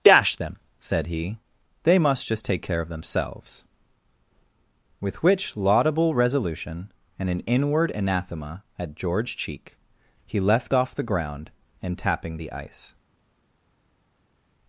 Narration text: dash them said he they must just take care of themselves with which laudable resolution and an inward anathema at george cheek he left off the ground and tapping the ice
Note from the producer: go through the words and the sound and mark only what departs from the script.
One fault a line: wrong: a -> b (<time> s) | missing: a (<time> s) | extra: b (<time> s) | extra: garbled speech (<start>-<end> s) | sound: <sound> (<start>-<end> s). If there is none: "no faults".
no faults